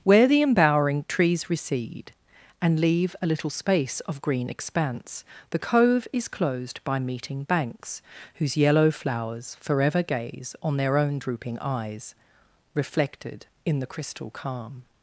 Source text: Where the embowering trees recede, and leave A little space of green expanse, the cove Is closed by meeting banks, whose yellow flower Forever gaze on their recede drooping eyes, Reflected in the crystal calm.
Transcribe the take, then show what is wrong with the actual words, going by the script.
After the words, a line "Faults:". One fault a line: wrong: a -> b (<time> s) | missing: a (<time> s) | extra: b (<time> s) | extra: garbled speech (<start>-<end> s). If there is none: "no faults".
Where the embowering trees recede, and leave A little space of green expanse, the cove Is closed by meeting banks, whose yellow flowers Forever gaze on their own drooping eyes, Reflected in the crystal calm.
Faults:
wrong: flower -> flowers (8.9 s)
wrong: recede -> own (11.0 s)